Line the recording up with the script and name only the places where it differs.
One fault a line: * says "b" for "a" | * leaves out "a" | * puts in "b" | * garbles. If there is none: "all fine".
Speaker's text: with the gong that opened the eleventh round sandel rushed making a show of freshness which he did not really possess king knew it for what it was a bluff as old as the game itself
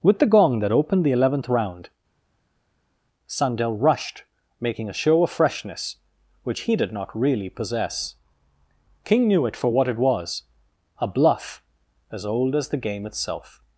all fine